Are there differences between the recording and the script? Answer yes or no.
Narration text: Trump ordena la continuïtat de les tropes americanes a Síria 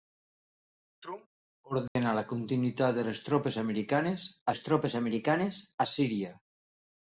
yes